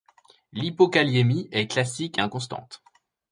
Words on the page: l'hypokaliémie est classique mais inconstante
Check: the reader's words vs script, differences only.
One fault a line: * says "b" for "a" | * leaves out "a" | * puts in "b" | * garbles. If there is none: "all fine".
* leaves out "mais"